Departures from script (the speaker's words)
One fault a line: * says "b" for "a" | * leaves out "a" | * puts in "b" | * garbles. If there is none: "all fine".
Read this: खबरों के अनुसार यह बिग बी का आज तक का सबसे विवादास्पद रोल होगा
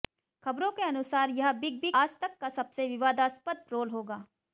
* leaves out "का"